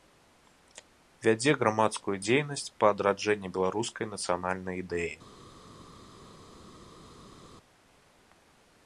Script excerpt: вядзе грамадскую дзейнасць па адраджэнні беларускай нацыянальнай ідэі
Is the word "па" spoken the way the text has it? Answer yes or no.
yes